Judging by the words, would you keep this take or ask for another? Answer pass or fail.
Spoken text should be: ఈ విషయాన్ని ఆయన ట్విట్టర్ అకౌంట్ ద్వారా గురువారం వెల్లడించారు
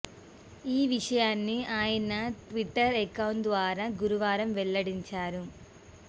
pass